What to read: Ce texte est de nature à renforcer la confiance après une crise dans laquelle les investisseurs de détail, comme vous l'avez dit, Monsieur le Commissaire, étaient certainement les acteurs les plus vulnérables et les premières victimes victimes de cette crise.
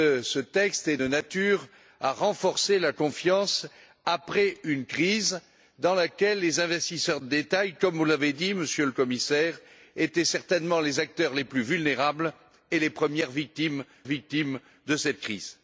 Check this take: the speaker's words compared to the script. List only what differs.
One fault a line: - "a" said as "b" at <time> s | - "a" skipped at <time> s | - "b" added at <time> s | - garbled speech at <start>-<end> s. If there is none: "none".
none